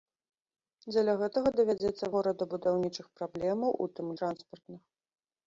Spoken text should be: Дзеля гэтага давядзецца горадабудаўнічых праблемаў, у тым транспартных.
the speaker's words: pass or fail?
pass